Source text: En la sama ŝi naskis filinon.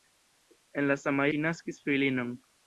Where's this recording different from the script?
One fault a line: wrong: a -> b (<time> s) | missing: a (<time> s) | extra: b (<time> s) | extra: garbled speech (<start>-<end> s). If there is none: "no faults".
no faults